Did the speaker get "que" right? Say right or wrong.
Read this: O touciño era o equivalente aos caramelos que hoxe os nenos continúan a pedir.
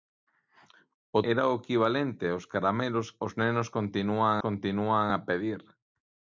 wrong